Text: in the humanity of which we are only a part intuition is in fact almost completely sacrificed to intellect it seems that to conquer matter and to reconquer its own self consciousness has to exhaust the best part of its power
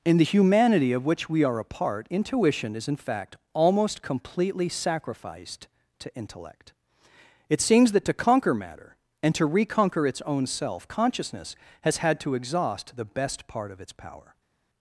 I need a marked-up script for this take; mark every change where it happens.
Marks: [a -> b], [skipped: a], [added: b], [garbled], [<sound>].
in the humanity of which we are [skipped: only] a part intuition is in fact almost completely sacrificed to intellect it seems that to conquer matter and to reconquer its own self consciousness has [added: had] to exhaust the best part of its power